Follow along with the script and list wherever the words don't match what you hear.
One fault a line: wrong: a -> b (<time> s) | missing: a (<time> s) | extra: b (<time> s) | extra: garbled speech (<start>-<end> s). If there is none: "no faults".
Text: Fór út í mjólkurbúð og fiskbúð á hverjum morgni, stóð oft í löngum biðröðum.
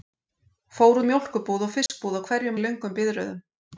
missing: út (1.0 s)
missing: morgni stóð oft (2.6 s)